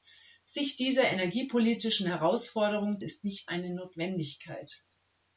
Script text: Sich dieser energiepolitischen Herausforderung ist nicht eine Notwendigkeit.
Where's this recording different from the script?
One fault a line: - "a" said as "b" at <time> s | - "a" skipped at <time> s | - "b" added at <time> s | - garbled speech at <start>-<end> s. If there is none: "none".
none